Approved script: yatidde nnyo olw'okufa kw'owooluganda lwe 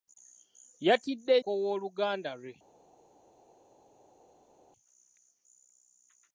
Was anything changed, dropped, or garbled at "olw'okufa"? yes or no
yes